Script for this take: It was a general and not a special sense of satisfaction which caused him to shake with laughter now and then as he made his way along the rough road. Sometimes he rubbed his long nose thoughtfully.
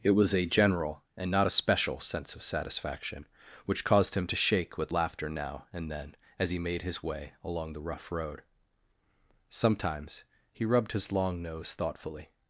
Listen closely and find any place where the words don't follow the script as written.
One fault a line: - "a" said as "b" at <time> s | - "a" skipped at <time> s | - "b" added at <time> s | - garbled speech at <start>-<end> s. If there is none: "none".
none